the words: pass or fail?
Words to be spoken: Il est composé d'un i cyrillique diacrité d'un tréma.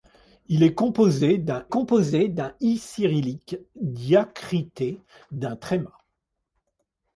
fail